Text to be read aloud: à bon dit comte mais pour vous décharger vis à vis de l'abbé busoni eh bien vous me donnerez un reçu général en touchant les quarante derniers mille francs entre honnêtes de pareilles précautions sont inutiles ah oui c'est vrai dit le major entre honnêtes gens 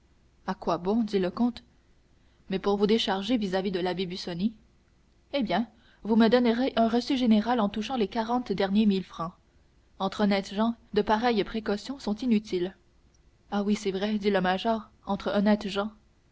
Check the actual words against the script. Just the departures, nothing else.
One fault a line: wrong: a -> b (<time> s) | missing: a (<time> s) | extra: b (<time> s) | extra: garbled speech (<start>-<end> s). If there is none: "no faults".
extra: quoi (0.6 s)
extra: le (1.2 s)
extra: gens (10.5 s)